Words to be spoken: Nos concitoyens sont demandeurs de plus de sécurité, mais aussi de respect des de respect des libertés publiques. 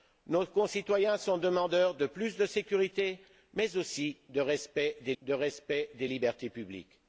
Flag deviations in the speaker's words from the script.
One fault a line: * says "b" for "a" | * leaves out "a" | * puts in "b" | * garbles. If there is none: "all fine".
all fine